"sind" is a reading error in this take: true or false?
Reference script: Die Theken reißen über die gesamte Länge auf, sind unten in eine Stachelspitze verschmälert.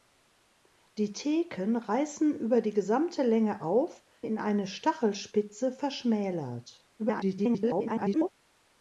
true